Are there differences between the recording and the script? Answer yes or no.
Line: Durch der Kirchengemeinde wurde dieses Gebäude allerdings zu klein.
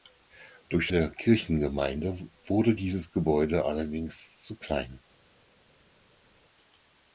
no